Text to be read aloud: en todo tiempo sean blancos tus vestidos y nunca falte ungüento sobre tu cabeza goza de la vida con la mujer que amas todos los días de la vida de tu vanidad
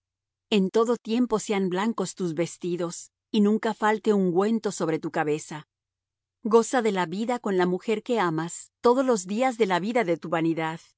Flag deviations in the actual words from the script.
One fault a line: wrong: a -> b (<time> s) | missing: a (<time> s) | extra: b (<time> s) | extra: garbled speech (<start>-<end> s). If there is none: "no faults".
no faults